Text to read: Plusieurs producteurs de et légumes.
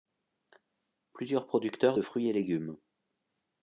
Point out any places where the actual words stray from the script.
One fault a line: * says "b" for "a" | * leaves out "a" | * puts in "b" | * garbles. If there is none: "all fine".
* puts in "fruits"